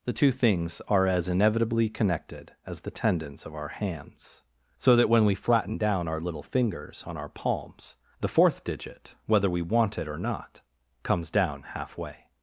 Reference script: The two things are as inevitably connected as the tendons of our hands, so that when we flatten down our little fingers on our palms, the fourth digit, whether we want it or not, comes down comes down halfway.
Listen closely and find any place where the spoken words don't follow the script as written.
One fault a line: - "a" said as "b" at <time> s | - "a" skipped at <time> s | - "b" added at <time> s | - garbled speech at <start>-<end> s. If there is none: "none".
- "comes down" skipped at 11.6 s